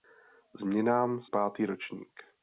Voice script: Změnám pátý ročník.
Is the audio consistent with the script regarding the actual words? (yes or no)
yes